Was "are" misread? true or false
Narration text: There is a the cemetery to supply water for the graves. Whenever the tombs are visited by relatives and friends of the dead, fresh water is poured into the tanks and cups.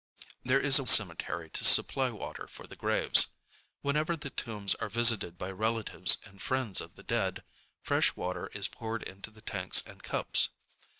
false